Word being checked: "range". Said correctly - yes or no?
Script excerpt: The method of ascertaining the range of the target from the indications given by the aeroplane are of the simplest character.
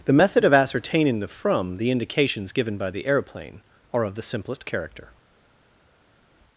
no